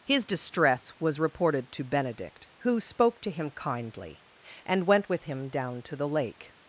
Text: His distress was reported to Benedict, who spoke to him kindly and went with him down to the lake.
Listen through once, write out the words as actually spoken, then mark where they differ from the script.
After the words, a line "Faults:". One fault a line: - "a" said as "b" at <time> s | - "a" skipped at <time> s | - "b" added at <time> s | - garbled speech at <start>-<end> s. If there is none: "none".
His distress was reported to Benedict, who spoke to him kindly and went with him down to the lake.
Faults:
none